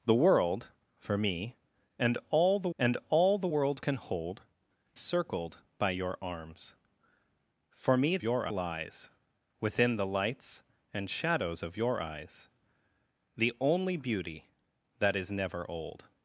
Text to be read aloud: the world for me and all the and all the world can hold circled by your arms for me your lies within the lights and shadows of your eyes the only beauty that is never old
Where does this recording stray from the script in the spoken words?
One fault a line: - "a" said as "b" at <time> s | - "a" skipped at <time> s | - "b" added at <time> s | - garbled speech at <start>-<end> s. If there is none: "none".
none